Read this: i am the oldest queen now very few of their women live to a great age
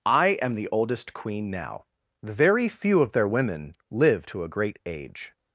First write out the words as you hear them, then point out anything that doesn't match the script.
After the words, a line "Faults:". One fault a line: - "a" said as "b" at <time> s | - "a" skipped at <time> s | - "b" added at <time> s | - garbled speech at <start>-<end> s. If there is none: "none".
i am the oldest queen now very few of their women live to a great age
Faults:
none